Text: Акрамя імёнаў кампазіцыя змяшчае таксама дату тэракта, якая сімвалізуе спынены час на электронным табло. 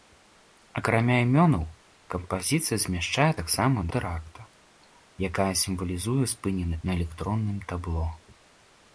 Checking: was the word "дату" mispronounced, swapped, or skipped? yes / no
yes